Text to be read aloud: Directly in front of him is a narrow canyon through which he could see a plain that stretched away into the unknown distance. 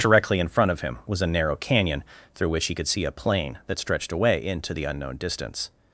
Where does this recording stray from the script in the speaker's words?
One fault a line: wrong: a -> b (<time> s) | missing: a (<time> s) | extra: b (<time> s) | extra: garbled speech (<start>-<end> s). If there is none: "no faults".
wrong: is -> was (1.1 s)